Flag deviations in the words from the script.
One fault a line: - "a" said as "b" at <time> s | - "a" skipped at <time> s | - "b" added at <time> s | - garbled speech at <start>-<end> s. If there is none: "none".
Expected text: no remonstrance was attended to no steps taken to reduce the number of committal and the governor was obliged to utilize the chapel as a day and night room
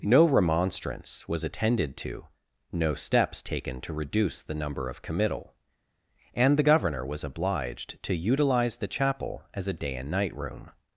none